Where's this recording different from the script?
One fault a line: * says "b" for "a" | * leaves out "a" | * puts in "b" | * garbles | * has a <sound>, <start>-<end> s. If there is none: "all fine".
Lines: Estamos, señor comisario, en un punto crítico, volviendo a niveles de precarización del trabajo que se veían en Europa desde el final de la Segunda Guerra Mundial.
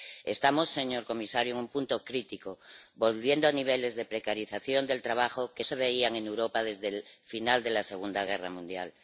all fine